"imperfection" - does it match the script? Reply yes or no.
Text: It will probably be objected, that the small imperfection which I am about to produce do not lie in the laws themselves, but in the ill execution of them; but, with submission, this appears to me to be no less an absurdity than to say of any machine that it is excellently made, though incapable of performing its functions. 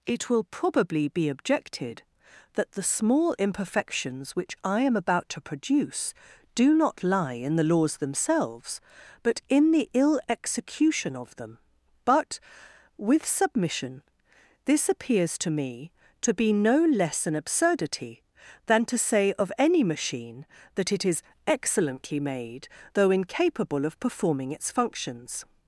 no